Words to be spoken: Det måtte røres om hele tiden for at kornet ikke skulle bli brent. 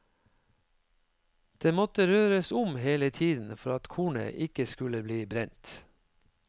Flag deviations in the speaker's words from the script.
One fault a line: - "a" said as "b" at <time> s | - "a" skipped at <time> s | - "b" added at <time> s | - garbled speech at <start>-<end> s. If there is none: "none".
none